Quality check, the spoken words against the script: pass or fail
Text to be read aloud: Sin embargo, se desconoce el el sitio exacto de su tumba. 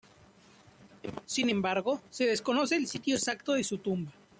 fail